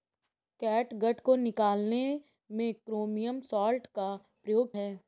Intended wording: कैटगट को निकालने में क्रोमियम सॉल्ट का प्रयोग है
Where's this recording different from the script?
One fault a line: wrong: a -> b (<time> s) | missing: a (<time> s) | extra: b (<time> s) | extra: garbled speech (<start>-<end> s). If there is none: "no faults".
no faults